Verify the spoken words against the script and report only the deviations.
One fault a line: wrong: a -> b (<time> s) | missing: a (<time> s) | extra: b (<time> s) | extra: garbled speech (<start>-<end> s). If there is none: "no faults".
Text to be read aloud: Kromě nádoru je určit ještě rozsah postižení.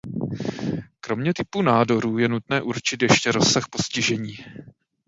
extra: typu (1.3 s)
extra: nutné (2.3 s)